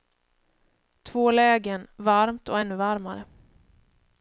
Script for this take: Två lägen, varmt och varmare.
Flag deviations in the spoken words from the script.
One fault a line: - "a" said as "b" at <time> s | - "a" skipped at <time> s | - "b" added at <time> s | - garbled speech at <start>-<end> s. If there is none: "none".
- "ännu" added at 2.6 s